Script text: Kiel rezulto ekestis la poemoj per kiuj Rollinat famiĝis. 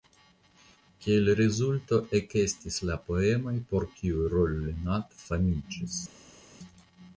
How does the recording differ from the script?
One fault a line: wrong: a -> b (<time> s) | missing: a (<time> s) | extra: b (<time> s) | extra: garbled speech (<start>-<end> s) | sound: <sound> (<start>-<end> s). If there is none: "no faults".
wrong: per -> por (3.7 s)